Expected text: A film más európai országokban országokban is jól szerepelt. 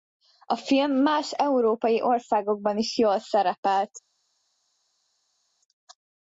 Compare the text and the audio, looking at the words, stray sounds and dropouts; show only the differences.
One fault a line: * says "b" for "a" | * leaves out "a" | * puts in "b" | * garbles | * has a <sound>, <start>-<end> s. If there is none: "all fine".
* leaves out "országokban"